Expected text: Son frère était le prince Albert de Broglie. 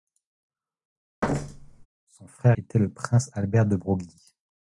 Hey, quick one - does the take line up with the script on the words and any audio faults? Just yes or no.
no